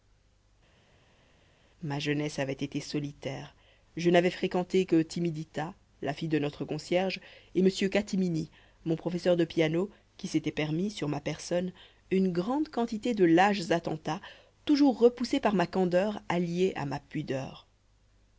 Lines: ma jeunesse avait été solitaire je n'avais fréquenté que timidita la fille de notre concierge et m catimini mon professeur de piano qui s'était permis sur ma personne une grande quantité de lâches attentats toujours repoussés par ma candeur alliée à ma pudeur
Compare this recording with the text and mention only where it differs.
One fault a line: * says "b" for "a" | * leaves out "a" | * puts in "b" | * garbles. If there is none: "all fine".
all fine